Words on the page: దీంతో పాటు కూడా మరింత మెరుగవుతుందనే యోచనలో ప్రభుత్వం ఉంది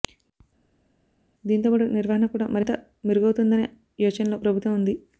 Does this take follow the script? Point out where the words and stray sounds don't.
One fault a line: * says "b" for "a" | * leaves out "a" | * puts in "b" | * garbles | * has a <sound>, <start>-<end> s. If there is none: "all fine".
* puts in "నిర్వహణ"